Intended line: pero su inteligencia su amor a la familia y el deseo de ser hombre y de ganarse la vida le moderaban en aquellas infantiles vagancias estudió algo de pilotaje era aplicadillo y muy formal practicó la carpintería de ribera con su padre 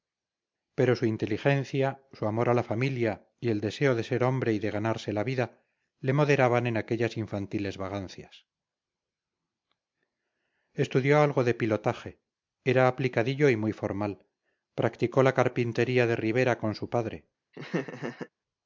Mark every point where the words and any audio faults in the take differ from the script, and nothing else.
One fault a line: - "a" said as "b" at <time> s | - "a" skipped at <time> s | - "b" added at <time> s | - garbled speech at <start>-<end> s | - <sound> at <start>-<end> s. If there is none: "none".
- laugh at 17.5-18.3 s